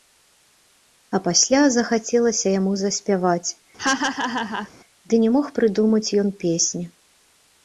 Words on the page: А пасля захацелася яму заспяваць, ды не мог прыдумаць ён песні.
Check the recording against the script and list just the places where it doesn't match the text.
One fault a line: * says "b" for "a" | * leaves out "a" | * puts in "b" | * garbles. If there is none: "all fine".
all fine